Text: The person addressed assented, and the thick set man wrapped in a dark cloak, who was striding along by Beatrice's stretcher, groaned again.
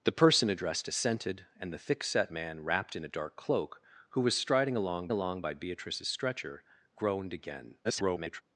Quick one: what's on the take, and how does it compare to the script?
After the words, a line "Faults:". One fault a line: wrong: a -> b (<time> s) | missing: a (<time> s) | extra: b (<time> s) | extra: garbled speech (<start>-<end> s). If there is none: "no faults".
The person addressed assented, and the thick set man wrapped in a dark cloak, who was striding along along by Beatrice's stretcher, groaned again. [garbled]
Faults:
extra: along (5.1 s)
extra: garbled speech (7.8-8.4 s)